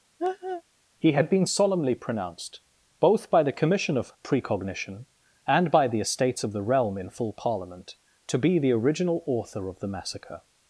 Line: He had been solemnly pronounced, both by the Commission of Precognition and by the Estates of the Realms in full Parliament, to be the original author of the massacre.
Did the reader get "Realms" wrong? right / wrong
wrong